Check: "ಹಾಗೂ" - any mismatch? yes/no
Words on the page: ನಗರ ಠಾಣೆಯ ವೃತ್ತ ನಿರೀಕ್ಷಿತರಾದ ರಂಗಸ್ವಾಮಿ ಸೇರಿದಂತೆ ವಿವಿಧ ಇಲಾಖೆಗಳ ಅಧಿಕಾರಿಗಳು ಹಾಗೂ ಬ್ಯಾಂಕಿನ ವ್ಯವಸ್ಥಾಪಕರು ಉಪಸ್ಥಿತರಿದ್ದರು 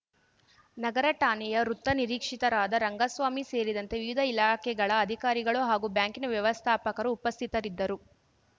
no